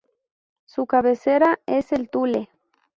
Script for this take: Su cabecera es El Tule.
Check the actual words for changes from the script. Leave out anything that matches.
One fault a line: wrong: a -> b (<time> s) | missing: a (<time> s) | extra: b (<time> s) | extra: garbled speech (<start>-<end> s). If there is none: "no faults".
no faults